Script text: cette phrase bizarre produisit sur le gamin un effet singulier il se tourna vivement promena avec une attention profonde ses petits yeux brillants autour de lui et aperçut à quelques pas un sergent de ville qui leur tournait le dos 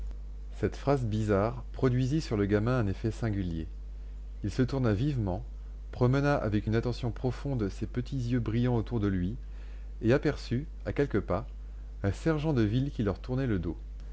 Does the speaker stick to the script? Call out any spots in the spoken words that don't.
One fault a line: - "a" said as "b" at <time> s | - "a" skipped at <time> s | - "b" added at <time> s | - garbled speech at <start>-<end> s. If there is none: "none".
none